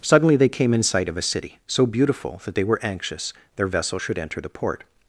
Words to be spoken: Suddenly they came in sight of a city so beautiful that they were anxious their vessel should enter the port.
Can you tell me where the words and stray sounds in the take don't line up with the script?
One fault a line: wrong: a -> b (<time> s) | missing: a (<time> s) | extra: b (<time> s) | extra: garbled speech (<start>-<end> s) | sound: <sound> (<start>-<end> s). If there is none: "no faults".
no faults